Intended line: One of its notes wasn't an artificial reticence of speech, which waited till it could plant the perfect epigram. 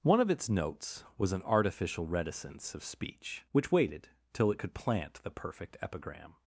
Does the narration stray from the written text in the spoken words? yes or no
yes